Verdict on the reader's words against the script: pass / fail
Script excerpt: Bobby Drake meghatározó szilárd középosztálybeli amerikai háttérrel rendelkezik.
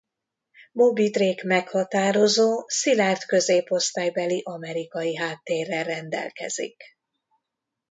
pass